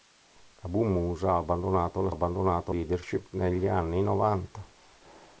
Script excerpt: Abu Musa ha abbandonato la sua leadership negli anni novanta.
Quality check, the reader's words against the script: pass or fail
fail